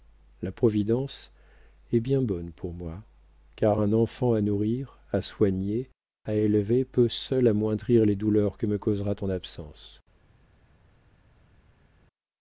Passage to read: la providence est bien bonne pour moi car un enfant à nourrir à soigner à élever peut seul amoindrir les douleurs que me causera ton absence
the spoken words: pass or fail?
pass